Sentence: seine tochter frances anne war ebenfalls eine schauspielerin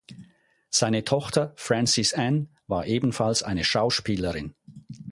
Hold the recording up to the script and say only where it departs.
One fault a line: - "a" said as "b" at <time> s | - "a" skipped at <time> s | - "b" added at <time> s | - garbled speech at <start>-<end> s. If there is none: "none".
none